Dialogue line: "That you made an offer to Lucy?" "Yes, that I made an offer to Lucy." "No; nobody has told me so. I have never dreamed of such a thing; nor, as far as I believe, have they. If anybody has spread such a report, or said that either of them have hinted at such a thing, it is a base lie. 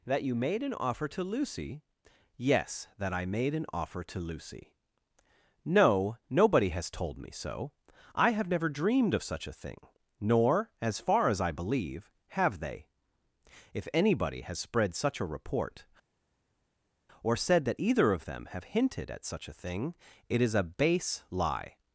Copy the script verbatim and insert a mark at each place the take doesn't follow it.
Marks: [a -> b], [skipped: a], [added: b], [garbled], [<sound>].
"That you made an offer to Lucy?" "Yes, that I made an offer to Lucy." "No; nobody has told me so. I have never dreamed of such a thing; nor, as far as I believe, have they. If anybody has spread such a report, or said that either of them have hinted at such a thing, it is a base lie.